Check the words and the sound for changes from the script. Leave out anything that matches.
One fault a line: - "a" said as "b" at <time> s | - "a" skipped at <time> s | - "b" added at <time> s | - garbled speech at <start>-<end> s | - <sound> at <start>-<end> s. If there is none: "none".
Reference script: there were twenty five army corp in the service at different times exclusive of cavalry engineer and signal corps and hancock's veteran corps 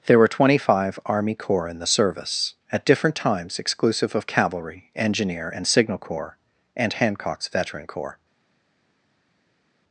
- "corp" said as "corps" at 1.4 s